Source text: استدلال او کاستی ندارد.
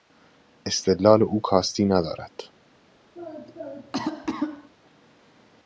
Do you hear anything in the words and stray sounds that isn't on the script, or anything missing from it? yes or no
yes